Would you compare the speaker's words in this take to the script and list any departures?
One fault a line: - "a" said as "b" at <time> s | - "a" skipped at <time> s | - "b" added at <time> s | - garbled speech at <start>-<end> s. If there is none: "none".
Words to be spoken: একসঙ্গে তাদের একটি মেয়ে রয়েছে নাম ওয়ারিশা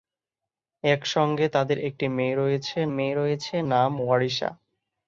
- "মেয়ে রয়েছে" added at 2.9 s